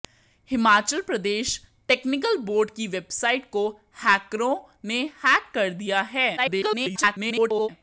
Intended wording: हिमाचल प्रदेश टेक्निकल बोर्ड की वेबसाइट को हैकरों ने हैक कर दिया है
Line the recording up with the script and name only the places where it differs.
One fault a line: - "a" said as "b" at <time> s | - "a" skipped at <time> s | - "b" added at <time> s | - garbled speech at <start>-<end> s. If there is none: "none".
- garbled speech at 6.4-7.7 s